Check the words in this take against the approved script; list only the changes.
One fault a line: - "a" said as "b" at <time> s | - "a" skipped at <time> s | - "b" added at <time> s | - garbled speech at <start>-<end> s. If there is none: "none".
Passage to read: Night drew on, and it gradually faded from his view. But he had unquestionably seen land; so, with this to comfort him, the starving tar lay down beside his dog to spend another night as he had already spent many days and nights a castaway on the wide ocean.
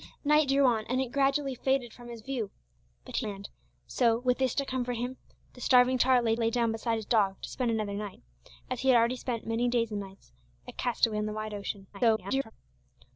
- "had unquestionably seen" skipped at 3.3 s
- "lay" added at 6.4 s
- garbled speech at 11.9-12.5 s